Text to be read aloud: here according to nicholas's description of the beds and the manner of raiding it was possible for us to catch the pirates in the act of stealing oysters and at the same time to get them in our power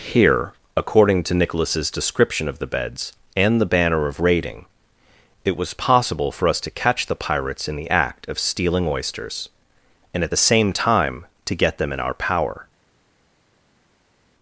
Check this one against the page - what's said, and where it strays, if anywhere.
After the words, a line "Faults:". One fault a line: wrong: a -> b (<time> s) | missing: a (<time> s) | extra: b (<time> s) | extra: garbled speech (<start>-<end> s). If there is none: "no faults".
here according to nicholas's description of the beds and the banner of raiding it was possible for us to catch the pirates in the act of stealing oysters and at the same time to get them in our power
Faults:
wrong: manner -> banner (3.6 s)